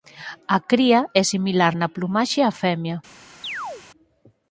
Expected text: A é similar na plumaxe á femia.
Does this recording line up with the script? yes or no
no